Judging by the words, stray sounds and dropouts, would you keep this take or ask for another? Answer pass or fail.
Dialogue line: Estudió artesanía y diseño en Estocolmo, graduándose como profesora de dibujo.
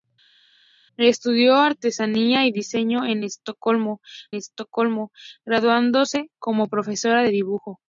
fail